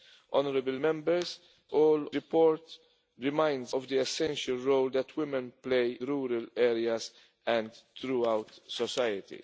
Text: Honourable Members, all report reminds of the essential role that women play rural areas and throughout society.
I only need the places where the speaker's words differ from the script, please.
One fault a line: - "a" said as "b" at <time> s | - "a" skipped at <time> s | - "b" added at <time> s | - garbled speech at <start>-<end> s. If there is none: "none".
none